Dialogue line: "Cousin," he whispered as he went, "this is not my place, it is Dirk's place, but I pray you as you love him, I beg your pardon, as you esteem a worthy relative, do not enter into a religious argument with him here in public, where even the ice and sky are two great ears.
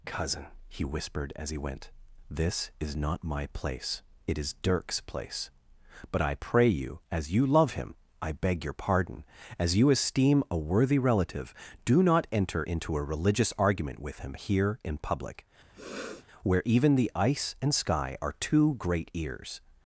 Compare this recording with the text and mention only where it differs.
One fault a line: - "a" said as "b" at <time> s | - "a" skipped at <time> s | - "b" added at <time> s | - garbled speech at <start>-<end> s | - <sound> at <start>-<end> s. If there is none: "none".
- sniff at 15.7-16.3 s